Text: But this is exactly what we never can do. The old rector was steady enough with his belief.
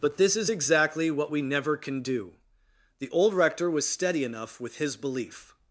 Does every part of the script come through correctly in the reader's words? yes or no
yes